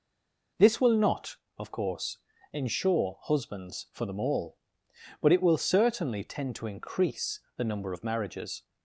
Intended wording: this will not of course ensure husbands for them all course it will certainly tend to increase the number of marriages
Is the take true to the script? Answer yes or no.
no